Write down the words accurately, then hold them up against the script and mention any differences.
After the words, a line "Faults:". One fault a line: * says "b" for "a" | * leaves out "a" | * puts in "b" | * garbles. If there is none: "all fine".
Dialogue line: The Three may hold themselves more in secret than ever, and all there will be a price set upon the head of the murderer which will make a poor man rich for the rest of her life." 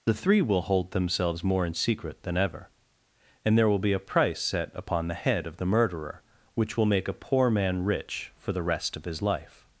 The Three will hold themselves more in secret than ever, and there will be a price set upon the head of the murderer which will make a poor man rich for the rest of his life."
Faults:
* says "will" for "may"
* leaves out "all"
* says "his" for "her"